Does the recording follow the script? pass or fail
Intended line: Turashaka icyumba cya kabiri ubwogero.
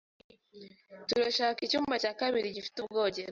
fail